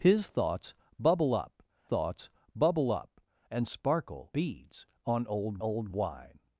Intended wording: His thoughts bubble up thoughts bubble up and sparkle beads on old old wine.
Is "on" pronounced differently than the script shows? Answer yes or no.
no